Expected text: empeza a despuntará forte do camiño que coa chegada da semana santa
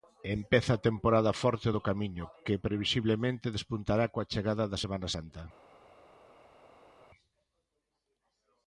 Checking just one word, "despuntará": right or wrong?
wrong